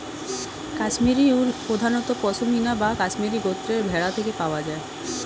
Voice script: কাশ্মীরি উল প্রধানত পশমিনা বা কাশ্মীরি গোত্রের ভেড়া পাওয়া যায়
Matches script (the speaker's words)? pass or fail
fail